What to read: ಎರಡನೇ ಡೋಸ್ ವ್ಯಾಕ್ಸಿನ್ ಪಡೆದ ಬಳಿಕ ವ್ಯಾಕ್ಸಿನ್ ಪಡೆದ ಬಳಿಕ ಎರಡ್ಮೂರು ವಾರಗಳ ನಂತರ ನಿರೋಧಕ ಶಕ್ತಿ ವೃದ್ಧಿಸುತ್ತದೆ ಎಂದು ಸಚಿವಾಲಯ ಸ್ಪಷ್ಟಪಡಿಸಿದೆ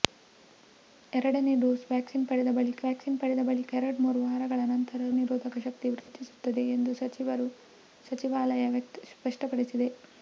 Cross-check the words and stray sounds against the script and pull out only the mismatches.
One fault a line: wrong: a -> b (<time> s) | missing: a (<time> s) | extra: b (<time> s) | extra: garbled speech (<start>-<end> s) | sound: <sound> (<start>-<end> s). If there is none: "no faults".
sound: dropout (6.0-6.1 s)